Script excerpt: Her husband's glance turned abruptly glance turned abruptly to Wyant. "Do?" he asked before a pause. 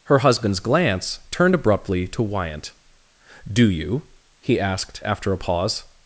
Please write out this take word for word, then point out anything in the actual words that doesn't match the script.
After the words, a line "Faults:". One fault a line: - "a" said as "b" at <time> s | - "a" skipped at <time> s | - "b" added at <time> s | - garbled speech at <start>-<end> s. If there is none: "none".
Her husband's glance turned abruptly to Wyant. "Do you?" he asked after a pause.
Faults:
- "glance turned abruptly" skipped at 2.1 s
- "you" added at 3.7 s
- "before" said as "after" at 5.0 s